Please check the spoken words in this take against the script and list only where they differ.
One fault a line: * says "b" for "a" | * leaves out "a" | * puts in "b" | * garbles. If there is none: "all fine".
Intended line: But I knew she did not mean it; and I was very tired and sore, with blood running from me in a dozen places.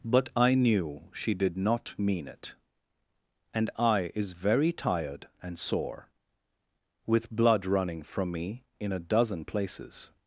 * says "is" for "was"